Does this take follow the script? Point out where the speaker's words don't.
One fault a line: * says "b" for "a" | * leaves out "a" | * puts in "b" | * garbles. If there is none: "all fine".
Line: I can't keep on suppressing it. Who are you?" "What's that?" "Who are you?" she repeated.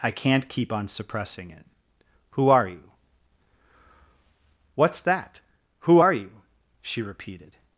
all fine